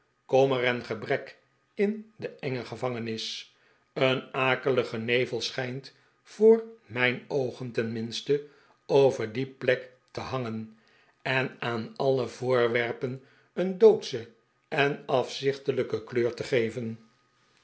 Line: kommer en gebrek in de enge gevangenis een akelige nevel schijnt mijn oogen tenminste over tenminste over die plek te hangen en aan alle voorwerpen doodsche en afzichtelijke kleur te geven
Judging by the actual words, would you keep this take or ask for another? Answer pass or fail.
fail